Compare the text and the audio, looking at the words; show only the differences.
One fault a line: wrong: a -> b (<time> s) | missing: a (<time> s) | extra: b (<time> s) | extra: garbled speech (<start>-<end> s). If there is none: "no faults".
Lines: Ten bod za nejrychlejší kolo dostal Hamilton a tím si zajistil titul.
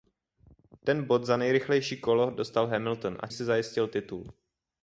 missing: tím (3.3 s)